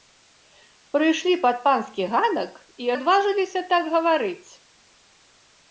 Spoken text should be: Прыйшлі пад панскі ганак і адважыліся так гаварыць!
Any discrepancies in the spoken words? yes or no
no